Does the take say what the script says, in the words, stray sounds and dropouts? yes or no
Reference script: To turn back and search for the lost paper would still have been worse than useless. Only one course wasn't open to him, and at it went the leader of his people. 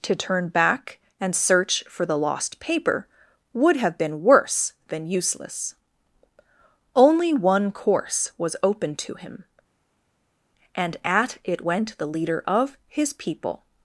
no